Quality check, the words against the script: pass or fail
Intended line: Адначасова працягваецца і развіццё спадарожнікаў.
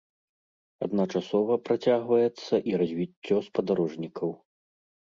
pass